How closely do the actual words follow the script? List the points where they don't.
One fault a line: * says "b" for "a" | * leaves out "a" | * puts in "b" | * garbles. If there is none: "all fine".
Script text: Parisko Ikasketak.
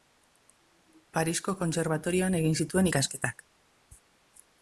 * puts in "Kontserbatorioan egin zituen"